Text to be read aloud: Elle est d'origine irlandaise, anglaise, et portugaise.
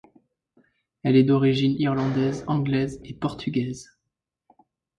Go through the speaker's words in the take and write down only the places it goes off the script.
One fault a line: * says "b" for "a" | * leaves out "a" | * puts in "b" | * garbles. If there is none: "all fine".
all fine